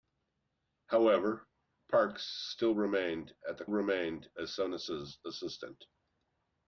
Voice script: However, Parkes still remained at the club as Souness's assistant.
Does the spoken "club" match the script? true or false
false